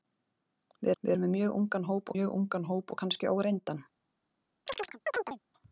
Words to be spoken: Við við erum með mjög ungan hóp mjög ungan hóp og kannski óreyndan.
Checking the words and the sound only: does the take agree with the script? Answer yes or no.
no